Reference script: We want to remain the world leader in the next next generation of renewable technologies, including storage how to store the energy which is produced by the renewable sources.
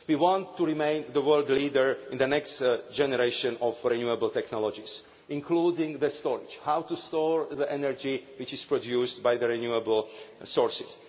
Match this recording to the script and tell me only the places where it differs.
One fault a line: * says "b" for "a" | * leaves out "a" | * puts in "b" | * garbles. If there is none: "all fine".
* leaves out "next"